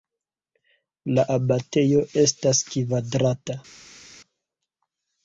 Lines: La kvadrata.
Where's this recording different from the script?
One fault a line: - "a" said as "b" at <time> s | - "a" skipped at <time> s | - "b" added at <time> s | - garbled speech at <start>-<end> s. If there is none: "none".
- "abatejo estas" added at 1.3 s